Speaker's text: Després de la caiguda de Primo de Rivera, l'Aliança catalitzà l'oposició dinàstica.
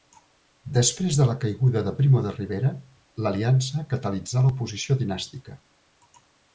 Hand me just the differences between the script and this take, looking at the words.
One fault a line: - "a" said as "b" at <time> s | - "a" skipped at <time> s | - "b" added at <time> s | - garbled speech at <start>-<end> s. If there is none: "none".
none